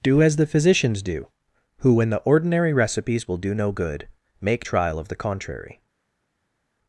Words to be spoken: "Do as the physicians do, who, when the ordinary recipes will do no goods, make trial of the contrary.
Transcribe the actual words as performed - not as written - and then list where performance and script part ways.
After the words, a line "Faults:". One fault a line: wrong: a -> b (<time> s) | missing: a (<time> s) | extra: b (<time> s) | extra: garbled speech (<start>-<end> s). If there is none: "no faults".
"Do as the physicians do, who, when the ordinary recipes will do no good, make trial of the contrary.
Faults:
wrong: goods -> good (3.7 s)